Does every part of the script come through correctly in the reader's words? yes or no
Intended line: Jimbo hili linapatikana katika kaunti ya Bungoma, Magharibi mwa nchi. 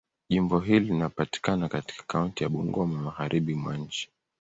yes